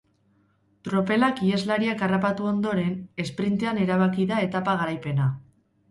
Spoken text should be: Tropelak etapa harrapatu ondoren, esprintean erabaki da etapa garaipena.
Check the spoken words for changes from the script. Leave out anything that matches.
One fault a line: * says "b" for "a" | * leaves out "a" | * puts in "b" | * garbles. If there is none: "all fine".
* says "iheslariak" for "etapa"